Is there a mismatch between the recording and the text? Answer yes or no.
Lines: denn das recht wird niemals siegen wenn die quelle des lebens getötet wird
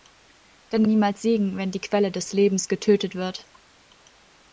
yes